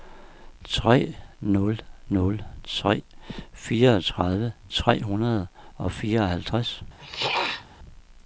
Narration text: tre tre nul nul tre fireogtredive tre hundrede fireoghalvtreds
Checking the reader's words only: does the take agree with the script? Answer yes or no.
no